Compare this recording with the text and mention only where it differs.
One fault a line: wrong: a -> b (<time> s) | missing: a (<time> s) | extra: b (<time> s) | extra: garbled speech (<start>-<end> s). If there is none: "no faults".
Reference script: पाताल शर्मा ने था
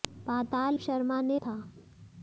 no faults